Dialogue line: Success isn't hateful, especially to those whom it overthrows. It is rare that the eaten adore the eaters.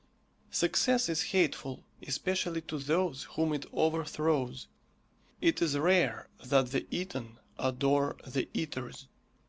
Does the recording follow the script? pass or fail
fail